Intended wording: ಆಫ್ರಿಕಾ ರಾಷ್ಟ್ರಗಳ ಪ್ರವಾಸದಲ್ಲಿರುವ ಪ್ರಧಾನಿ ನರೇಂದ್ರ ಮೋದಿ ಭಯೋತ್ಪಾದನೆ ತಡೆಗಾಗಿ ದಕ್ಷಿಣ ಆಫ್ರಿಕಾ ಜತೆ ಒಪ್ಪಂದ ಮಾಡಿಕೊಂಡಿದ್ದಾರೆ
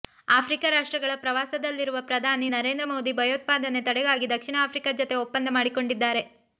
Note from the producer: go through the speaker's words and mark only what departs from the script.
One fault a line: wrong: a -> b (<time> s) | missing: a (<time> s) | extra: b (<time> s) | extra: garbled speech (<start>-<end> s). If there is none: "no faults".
no faults